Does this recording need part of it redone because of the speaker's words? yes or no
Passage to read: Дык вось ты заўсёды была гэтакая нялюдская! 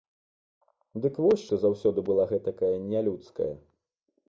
no